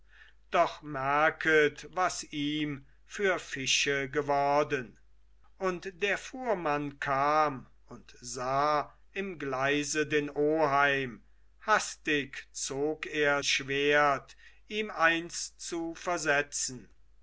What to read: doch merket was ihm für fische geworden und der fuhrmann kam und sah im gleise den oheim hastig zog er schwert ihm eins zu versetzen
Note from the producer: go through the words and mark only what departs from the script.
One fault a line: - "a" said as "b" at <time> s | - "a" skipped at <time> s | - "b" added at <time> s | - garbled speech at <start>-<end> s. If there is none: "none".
none